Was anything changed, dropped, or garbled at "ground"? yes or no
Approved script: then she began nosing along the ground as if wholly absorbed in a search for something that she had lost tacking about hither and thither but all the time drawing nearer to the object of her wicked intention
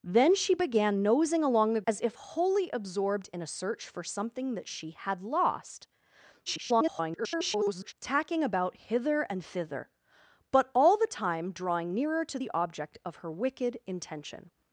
yes